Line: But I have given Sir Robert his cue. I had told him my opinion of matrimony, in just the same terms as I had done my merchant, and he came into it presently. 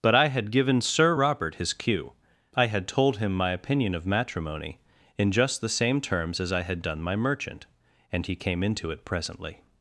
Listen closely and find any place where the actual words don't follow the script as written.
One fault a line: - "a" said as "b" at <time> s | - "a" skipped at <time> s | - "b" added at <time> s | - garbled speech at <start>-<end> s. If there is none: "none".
- "have" said as "had" at 0.3 s